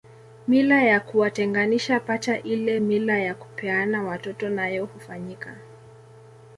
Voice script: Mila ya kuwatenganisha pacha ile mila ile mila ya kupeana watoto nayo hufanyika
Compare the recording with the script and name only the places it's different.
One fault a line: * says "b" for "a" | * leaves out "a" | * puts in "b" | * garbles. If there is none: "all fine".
* leaves out "ile mila"